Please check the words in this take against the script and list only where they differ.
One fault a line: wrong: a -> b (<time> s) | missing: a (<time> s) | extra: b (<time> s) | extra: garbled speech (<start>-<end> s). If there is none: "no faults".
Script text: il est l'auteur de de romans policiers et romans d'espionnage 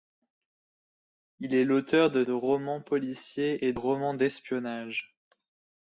no faults